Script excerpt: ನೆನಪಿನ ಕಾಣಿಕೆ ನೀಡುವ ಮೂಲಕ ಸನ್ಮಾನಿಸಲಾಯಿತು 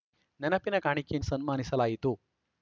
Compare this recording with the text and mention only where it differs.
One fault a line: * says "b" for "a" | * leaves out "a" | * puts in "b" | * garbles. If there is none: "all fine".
* leaves out "ನೀಡುವ ಮೂಲಕ"